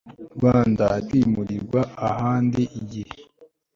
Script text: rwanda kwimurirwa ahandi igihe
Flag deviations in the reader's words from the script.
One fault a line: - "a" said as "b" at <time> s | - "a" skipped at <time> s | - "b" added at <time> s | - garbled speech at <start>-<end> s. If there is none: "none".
none